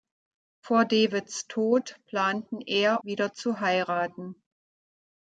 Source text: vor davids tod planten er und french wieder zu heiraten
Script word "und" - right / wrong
wrong